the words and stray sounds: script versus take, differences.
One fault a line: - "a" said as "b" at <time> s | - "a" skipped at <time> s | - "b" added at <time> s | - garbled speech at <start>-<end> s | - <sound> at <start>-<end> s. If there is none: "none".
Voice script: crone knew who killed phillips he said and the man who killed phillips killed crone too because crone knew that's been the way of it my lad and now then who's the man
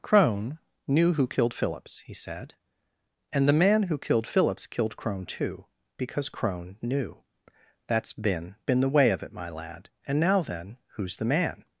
- "been" added at 8.7 s